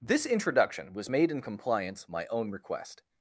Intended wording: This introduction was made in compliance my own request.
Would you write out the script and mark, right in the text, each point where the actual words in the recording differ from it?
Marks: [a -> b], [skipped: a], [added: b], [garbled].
This introduction was made in compliance my own request.